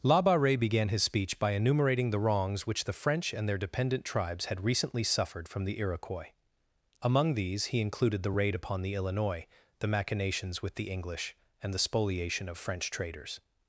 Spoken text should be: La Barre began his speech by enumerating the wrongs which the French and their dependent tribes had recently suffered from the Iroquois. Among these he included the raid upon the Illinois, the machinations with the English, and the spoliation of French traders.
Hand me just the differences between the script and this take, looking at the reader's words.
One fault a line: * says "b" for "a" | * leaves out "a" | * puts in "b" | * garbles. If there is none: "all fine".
all fine